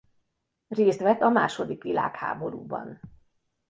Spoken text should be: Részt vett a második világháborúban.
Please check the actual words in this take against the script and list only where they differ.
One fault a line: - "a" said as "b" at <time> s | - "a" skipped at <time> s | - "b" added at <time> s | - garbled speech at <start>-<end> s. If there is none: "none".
none